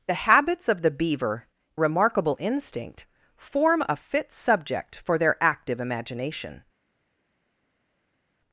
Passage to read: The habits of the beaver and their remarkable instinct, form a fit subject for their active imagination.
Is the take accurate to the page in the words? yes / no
no